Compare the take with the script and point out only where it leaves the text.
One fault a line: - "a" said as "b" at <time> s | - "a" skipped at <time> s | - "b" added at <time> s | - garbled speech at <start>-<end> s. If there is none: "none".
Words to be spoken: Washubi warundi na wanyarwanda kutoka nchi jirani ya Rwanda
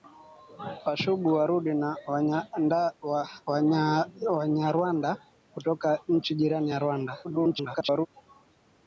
- garbled speech at 7.2-8.1 s